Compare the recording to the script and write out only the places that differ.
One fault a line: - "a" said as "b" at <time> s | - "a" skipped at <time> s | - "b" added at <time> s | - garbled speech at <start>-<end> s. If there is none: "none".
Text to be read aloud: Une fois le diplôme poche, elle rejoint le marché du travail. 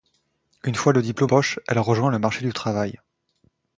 none